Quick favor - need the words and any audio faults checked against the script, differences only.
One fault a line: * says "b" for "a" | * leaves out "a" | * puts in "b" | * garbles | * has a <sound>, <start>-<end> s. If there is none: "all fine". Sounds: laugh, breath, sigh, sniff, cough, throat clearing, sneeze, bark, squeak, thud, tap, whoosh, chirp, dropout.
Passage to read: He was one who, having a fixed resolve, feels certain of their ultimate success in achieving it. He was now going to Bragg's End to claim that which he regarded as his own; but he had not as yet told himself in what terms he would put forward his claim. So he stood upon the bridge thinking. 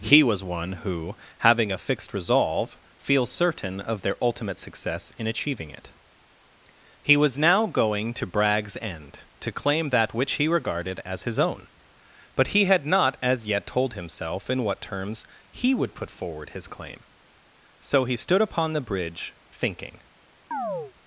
* has a chirp, 20.5-20.9 s